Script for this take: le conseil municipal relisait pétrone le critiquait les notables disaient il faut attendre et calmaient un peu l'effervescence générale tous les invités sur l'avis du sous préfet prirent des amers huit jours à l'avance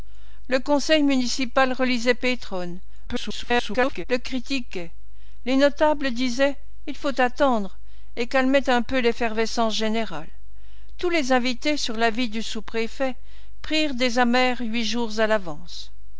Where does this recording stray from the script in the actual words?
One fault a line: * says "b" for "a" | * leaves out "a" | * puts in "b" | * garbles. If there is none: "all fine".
* garbles